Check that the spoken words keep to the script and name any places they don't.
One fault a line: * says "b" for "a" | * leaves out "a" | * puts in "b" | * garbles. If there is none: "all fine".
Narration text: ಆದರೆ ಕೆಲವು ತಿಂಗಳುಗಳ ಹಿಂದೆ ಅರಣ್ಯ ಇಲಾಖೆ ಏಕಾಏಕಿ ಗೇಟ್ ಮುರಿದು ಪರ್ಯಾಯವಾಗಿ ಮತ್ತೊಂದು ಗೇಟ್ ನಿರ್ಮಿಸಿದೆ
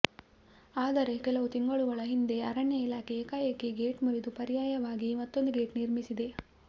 all fine